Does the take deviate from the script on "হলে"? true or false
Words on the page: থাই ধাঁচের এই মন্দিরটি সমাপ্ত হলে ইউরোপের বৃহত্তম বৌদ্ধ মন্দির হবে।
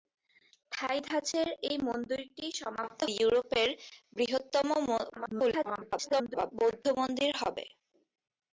true